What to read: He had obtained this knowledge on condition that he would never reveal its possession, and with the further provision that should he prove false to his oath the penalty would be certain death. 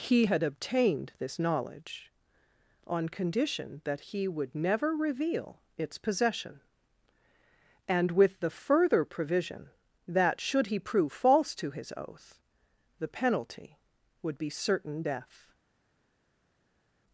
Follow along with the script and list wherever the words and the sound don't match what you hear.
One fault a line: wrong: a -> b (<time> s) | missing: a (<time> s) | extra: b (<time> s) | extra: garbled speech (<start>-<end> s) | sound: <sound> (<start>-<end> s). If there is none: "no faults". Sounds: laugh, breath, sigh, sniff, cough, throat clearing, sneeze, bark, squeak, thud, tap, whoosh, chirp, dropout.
no faults